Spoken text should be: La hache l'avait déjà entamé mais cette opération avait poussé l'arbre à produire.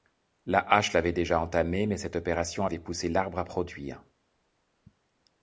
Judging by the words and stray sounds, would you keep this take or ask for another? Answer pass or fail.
pass